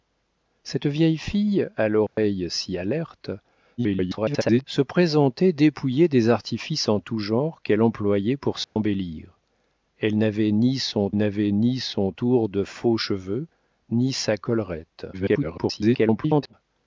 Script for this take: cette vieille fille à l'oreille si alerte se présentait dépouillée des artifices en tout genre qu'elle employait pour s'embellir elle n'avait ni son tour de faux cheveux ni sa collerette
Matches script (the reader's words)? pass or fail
fail